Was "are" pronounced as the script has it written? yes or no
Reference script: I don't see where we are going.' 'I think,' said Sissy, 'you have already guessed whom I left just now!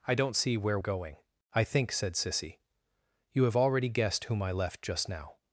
no